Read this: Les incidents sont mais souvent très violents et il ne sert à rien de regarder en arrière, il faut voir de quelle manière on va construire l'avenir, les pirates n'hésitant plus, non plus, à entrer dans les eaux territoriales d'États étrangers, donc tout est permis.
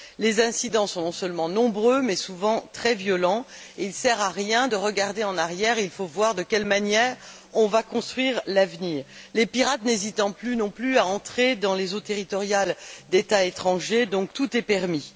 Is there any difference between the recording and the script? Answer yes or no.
yes